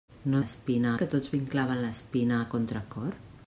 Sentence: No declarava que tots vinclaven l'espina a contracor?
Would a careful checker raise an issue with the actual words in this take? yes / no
yes